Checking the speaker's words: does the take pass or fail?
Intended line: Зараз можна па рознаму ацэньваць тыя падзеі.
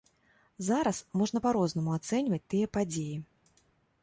pass